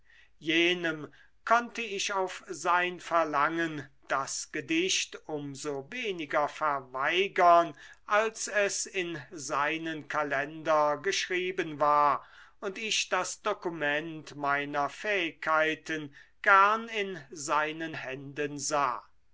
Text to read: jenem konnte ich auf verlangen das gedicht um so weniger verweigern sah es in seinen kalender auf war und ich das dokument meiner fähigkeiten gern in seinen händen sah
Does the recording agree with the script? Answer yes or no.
no